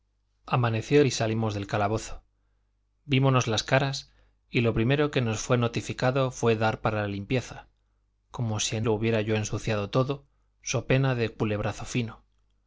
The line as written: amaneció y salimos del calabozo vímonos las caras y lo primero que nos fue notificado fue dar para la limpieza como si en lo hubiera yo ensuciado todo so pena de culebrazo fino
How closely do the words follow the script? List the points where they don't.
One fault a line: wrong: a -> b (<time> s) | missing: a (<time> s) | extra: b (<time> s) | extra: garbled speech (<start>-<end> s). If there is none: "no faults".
no faults